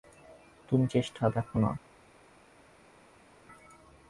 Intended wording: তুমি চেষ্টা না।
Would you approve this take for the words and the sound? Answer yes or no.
no